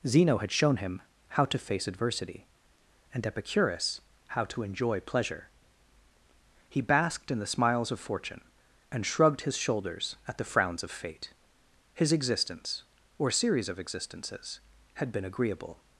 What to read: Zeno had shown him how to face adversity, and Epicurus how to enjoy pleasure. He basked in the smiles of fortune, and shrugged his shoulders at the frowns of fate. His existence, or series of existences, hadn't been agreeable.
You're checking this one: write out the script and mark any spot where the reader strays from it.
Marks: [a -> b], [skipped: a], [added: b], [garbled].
Zeno had shown him how to face adversity, and Epicurus how to enjoy pleasure. He basked in the smiles of fortune, and shrugged his shoulders at the frowns of fate. His existence, or series of existences, [hadn't -> had] been agreeable.